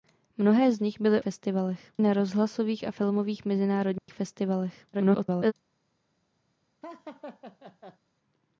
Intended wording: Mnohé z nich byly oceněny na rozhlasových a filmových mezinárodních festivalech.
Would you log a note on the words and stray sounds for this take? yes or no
yes